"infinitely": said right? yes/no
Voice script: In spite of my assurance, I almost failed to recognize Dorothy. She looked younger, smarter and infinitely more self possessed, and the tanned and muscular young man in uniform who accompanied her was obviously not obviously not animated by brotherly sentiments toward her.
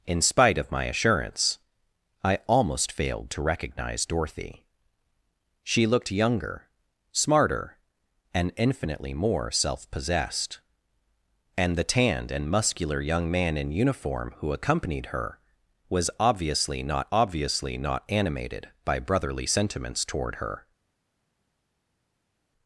yes